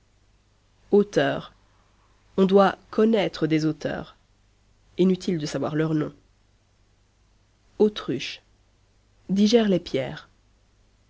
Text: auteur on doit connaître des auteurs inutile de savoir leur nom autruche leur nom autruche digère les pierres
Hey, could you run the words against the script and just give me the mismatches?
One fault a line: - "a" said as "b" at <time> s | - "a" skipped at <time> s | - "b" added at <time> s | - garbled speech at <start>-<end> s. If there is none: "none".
- "leur nom autruche" skipped at 8.4 s